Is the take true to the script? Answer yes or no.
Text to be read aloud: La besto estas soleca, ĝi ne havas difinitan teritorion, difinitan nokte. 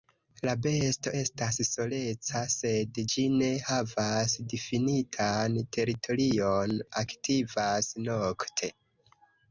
no